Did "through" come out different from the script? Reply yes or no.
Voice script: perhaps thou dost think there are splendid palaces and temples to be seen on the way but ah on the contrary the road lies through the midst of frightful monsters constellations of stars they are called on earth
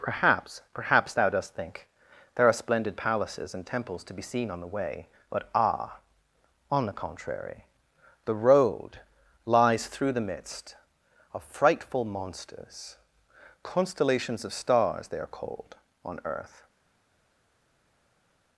no